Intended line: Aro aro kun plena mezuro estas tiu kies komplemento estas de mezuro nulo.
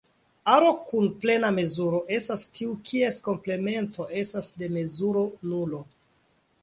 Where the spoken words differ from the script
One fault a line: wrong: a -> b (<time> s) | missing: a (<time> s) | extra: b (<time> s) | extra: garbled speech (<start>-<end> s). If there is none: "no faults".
missing: aro (0.7 s)